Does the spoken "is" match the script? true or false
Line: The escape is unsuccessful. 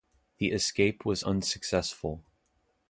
false